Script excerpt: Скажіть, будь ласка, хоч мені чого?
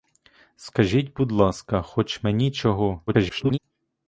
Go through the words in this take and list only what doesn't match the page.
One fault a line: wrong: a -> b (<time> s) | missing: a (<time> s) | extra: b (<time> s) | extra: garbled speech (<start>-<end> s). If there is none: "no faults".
extra: garbled speech (3.1-3.6 s)